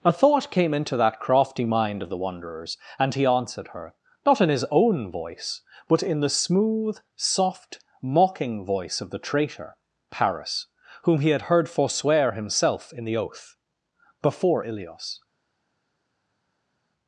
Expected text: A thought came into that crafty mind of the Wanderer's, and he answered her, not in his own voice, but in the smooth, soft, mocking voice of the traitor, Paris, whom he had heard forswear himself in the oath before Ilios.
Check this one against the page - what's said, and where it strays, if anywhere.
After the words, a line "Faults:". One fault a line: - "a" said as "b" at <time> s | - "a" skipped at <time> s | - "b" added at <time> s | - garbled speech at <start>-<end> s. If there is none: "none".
A thought came into that crafty mind of the Wanderer's, and he answered her, not in his own voice, but in the smooth, soft, mocking voice of the traitor, Paris, whom he had heard forswear himself in the oath before Ilios.
Faults:
none